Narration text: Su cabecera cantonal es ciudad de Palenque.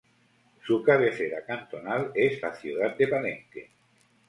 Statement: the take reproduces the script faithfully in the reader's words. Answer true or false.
false